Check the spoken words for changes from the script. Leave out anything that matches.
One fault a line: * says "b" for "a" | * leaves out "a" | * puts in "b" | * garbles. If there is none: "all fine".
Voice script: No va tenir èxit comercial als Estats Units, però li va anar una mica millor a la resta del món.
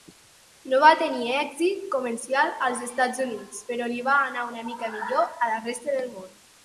all fine